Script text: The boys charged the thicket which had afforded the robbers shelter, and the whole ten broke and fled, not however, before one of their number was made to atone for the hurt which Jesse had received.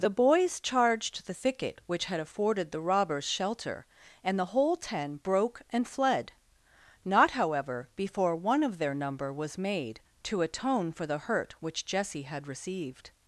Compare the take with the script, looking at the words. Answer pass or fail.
pass